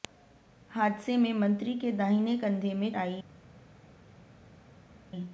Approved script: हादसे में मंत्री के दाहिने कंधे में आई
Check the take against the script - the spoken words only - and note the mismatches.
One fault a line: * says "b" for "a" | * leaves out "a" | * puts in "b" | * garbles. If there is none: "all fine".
all fine